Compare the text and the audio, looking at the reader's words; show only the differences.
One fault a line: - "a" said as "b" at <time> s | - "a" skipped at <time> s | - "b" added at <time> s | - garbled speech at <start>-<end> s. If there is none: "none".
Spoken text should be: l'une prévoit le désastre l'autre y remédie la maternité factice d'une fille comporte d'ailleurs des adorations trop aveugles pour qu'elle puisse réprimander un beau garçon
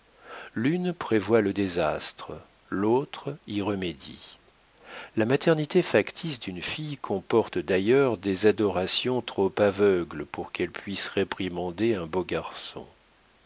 none